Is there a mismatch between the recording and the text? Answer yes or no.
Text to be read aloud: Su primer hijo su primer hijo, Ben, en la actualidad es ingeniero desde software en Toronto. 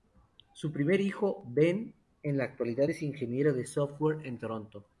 yes